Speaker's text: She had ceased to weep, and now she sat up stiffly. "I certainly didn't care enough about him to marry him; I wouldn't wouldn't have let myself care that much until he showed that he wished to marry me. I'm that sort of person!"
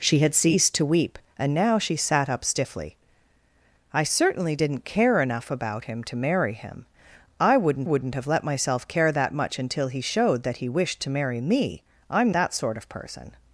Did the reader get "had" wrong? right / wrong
right